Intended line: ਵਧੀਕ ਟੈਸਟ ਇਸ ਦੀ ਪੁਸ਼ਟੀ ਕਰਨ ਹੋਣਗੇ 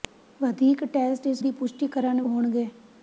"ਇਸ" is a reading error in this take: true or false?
false